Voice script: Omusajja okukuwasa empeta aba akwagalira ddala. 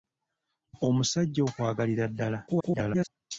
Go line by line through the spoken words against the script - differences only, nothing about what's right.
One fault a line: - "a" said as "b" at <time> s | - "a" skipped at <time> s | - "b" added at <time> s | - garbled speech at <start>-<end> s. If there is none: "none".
- "okukuwasa empeta aba" skipped at 1.4 s
- garbled speech at 2.5-3.1 s